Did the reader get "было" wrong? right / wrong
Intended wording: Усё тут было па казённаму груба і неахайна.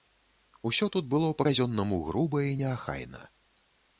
right